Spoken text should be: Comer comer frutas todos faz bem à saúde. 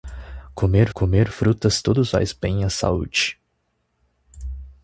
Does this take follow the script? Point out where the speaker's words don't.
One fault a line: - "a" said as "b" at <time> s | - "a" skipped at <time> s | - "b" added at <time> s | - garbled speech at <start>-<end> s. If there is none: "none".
none